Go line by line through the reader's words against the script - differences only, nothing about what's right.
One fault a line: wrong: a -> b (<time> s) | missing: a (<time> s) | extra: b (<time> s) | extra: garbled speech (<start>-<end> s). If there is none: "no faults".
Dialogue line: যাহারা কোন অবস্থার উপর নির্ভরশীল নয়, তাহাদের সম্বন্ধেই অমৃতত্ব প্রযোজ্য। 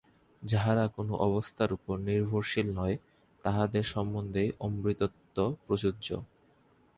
no faults